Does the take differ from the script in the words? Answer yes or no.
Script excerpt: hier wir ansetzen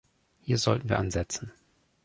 yes